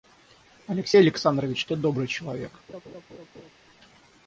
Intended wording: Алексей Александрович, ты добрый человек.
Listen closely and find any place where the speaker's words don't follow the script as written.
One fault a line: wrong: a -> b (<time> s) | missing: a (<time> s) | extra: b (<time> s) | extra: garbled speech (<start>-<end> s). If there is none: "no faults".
no faults